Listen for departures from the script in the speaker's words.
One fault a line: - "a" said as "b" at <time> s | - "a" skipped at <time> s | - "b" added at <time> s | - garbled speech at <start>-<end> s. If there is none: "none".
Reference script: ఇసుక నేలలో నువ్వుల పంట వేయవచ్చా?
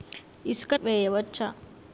- "నేలలో నువ్వుల పంట" skipped at 0.7 s